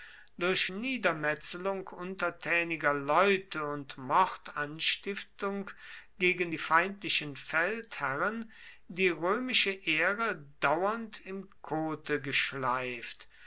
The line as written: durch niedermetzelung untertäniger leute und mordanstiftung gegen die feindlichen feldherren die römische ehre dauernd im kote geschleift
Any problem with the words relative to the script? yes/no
no